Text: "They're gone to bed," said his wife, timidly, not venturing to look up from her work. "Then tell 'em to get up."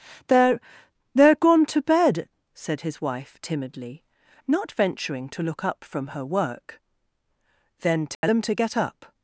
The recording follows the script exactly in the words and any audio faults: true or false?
false